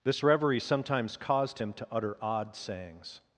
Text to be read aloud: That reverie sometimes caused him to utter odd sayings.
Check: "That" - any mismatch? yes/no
yes